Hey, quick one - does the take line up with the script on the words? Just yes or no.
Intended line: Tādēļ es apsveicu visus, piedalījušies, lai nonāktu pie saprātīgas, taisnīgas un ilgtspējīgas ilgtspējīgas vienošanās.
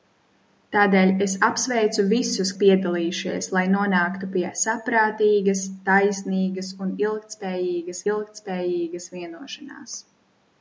yes